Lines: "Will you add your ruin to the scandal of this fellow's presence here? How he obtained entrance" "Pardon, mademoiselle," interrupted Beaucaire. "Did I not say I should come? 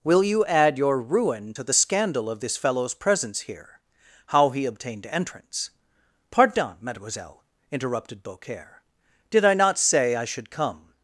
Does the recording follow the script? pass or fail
pass